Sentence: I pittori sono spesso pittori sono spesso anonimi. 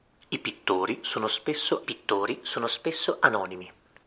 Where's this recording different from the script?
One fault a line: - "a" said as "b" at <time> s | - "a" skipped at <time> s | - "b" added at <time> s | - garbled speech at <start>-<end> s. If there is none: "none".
none